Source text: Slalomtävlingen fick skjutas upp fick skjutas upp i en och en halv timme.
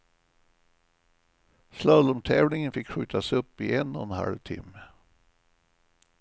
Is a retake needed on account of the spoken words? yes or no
yes